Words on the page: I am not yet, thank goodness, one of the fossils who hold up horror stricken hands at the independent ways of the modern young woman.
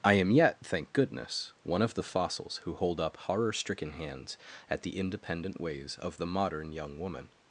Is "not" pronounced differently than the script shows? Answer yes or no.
yes